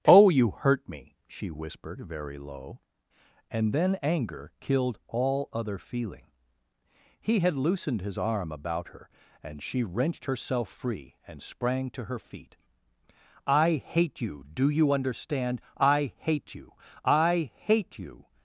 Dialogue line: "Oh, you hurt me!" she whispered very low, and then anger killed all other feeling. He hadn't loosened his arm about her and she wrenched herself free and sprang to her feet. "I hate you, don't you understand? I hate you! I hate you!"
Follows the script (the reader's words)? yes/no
no